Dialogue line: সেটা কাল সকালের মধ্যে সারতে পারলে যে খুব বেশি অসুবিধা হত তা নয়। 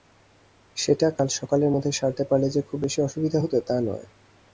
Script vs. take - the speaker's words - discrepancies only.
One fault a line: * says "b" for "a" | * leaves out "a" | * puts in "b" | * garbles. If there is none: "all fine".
all fine